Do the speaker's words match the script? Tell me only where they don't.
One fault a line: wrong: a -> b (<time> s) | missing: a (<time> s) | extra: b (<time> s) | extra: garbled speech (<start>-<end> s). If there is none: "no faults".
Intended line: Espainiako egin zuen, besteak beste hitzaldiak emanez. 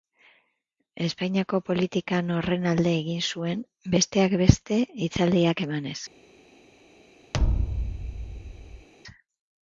extra: politikan horren alde (1.7 s)